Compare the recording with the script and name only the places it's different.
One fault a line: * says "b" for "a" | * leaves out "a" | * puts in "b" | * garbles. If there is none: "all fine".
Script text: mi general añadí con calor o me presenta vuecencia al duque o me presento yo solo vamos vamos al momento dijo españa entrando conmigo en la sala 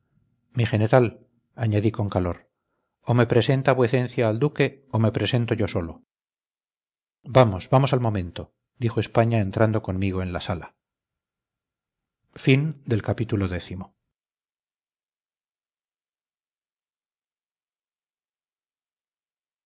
all fine